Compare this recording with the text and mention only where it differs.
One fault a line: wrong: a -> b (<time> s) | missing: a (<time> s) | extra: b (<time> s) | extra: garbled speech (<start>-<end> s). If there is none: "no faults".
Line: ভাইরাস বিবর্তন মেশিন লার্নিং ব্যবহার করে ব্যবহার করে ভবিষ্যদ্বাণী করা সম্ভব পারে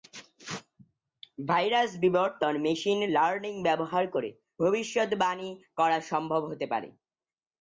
missing: ব্যবহার করে (4.3 s)
extra: হতে (6.5 s)